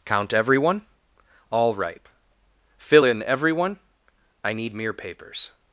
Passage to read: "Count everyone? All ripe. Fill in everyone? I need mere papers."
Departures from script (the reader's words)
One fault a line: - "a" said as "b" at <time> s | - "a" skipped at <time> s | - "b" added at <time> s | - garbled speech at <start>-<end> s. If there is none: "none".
none